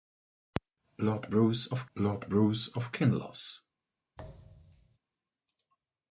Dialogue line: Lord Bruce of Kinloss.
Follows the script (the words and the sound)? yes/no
no